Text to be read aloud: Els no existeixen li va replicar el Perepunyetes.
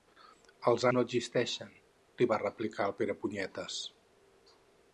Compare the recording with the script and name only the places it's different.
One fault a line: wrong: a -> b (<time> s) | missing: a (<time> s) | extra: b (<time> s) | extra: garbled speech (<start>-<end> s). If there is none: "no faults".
no faults